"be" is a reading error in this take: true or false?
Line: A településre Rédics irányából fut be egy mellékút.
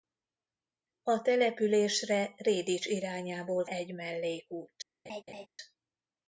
true